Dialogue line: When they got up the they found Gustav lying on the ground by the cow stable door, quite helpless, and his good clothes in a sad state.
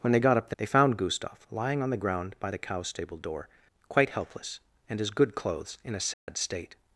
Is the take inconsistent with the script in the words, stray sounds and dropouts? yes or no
yes